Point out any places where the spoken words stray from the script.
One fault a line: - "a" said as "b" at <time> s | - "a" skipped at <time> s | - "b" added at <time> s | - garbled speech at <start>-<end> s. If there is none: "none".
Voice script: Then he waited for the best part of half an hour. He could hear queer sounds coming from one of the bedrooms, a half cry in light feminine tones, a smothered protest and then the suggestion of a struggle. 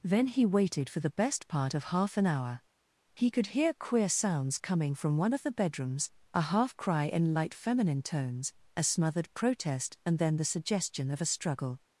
none